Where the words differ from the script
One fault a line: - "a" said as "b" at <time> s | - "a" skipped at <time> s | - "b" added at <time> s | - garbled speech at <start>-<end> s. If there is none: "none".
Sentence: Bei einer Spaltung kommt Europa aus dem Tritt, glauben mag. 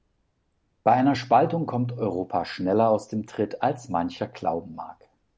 - "schneller" added at 2.5 s
- "als mancher" added at 3.6 s